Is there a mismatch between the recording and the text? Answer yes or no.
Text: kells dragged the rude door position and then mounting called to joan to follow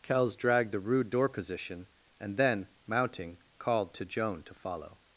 no